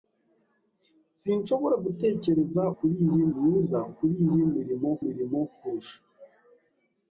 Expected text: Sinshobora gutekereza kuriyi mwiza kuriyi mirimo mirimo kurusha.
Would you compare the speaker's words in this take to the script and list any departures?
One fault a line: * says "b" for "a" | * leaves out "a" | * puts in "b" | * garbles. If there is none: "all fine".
all fine